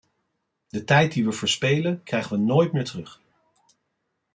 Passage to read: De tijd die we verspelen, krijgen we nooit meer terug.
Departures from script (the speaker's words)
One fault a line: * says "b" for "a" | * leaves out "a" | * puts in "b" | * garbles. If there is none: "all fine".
all fine